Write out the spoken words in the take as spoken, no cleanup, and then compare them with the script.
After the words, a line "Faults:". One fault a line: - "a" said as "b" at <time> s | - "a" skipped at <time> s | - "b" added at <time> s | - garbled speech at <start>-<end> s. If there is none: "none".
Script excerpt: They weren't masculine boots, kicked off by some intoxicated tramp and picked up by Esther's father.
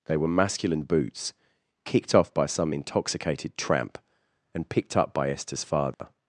They were masculine boots, kicked off by some intoxicated tramp and picked up by Esther's father.
Faults:
- "weren't" said as "were" at 0.2 s